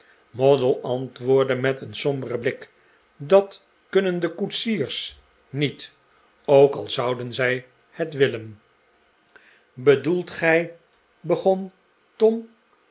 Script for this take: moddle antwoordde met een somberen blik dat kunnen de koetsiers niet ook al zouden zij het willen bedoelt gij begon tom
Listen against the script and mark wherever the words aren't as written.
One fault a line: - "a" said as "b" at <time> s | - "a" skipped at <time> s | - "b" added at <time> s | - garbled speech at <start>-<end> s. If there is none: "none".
none